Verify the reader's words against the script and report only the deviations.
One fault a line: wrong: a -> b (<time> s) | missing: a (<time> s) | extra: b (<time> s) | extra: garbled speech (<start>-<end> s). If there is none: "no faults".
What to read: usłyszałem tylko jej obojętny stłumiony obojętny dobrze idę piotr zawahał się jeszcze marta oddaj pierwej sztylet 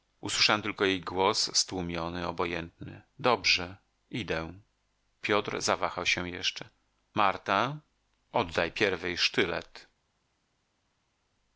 wrong: obojętny -> głos (1.0 s)